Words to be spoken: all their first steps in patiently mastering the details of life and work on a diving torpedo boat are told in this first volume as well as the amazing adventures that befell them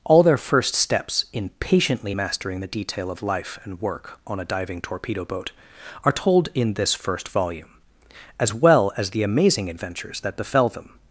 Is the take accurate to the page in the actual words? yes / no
no